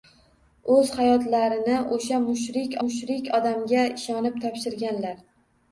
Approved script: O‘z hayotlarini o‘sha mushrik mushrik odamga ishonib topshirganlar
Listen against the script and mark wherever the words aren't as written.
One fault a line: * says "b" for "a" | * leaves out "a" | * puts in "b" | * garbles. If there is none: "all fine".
all fine